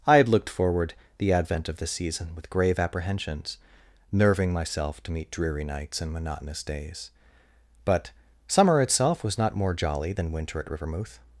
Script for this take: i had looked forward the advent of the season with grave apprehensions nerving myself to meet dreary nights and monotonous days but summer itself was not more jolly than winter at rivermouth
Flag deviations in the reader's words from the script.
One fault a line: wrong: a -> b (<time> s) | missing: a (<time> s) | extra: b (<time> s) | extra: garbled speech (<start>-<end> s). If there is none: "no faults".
no faults